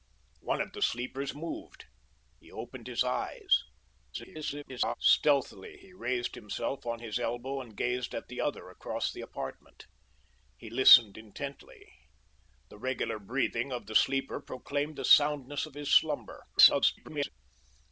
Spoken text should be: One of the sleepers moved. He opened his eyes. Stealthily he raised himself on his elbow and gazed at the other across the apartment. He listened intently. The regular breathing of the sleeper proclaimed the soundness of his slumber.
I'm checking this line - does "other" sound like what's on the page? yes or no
yes